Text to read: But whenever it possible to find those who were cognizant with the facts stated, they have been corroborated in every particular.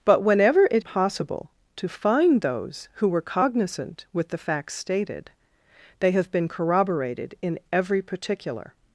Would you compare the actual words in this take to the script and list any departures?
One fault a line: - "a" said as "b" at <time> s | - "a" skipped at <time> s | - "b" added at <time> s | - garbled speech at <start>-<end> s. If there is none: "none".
none